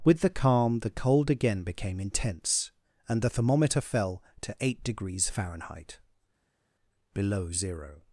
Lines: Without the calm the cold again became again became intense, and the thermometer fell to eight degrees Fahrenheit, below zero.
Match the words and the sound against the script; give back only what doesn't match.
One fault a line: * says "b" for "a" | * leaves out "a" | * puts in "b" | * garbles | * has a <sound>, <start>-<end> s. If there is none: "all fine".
* says "With" for "Without"
* leaves out "again became"